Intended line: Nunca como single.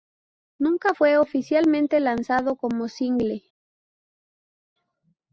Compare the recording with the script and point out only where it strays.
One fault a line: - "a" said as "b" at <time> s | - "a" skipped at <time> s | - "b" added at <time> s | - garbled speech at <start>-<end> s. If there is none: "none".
- "fue oficialmente lanzado" added at 0.9 s